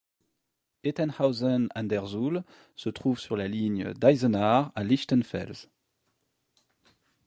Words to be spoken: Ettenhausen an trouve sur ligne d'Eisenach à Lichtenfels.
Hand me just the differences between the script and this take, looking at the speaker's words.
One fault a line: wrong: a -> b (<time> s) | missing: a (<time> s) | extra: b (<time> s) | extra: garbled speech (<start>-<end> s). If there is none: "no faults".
extra: der Suhl se (1.9 s)
extra: la (3.4 s)